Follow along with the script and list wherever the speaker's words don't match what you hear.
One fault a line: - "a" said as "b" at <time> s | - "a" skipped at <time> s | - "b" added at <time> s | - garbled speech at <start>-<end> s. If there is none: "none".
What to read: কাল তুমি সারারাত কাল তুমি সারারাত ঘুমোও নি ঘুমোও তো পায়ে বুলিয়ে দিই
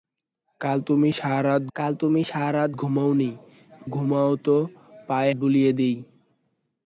none